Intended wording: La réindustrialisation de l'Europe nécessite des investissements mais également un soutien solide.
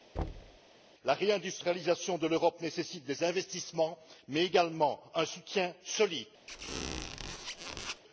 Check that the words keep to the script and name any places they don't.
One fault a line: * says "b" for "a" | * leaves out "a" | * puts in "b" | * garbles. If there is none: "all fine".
all fine